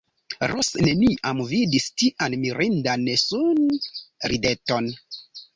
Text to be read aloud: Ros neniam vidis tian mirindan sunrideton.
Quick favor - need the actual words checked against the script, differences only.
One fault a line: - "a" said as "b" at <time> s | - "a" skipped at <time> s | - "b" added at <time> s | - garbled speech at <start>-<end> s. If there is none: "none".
none